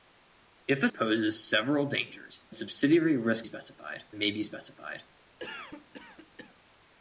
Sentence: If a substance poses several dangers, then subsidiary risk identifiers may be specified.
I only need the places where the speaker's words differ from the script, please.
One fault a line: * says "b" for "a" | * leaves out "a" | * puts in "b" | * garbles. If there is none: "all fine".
* leaves out "substance"
* leaves out "then"
* says "specified" for "identifiers"